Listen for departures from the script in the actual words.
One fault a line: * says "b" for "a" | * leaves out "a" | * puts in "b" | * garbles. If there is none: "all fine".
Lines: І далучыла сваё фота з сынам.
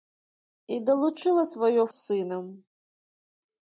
* leaves out "фота"